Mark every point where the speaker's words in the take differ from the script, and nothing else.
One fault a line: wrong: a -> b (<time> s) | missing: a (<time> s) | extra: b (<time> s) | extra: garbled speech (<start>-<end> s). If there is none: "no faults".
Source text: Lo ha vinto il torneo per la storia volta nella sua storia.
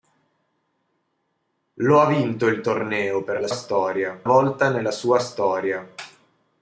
no faults